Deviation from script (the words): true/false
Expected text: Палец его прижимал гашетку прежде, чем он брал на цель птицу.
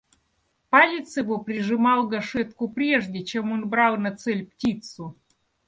false